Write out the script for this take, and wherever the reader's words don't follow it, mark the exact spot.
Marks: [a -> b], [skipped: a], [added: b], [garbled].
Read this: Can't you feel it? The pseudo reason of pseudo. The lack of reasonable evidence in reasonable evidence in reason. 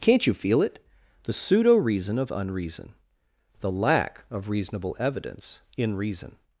Can't you feel it? The pseudo reason of [pseudo. -> unreason] The lack of reasonable evidence in [skipped: reasonable evidence in] reason.